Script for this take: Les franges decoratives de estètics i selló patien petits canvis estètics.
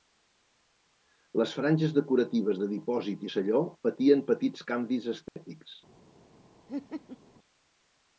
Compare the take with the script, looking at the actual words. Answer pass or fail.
fail